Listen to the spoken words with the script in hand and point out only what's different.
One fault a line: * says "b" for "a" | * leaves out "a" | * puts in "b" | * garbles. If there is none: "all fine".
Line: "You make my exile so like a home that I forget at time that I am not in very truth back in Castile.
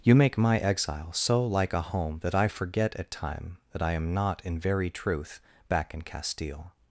all fine